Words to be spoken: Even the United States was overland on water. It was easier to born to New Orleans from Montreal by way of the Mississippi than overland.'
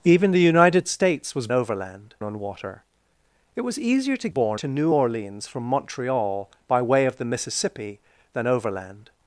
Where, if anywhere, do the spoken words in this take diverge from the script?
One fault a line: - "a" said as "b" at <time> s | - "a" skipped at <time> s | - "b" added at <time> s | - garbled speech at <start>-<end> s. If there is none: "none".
none